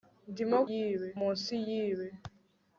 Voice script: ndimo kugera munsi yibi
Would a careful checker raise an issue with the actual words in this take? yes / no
yes